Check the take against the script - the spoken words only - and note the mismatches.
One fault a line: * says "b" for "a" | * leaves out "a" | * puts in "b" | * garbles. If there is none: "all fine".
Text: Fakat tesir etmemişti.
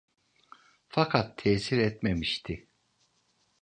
all fine